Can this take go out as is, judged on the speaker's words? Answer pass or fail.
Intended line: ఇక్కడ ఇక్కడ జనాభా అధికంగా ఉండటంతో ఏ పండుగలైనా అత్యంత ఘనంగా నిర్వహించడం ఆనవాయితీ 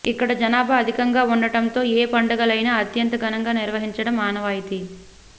fail